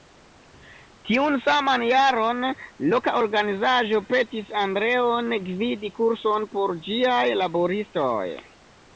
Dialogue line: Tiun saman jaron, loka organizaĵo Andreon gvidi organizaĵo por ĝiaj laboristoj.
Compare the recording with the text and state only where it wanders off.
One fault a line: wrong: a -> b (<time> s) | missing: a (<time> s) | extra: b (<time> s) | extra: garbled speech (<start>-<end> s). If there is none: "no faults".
extra: petis (4.1 s)
wrong: organizaĵo -> kurson (6.0 s)